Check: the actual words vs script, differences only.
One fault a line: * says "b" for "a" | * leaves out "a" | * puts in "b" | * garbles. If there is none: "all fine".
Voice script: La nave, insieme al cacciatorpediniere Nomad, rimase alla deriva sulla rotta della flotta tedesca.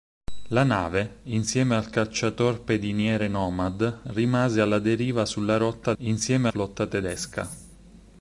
* says "insieme" for "della"